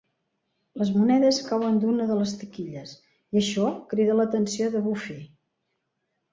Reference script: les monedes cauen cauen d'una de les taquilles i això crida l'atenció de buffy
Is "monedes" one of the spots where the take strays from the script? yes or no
no